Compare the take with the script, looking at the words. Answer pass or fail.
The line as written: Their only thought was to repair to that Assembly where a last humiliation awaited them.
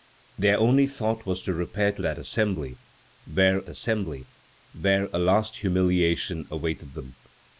fail